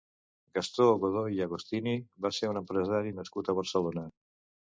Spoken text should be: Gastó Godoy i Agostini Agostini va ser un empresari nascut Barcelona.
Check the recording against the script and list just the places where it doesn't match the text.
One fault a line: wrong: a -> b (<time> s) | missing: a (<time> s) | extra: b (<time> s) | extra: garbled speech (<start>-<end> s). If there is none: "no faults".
missing: Agostini (1.9 s)
extra: a (3.5 s)